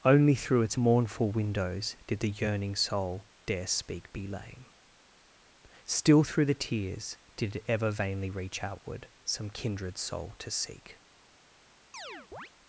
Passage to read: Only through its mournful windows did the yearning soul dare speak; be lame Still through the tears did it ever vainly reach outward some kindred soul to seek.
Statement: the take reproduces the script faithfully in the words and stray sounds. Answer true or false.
false